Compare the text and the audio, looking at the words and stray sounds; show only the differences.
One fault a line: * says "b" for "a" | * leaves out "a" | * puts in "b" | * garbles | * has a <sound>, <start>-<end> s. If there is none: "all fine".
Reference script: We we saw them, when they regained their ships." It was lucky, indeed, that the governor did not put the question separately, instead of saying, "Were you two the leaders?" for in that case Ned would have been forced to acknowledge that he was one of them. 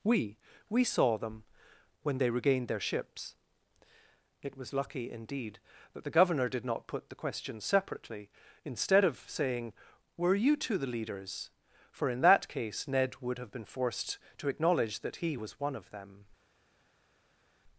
all fine